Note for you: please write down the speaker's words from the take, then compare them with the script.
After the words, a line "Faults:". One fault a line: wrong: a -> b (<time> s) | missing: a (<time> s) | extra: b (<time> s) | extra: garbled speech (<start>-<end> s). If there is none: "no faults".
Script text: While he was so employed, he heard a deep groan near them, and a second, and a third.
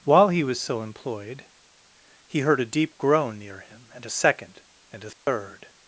While he was so employed, he heard a deep groan near him, and a second, and a third.
Faults:
wrong: them -> him (3.6 s)